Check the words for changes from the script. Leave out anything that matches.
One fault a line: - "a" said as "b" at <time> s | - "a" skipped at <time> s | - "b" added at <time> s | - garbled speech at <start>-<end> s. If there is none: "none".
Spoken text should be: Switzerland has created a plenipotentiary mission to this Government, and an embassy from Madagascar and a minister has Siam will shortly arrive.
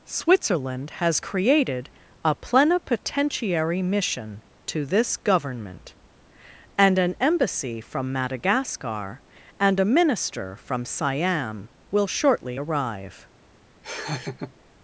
- "has" said as "from" at 10.5 s